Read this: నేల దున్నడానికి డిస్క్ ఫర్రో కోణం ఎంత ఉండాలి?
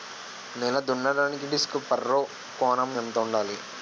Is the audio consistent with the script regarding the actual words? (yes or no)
yes